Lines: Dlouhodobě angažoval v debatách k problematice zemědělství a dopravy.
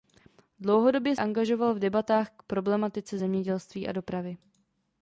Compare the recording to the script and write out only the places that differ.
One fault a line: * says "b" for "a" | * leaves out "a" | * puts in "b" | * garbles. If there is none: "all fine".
all fine